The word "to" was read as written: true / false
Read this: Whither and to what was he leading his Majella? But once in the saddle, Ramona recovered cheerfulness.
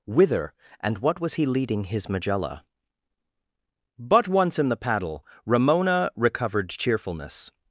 false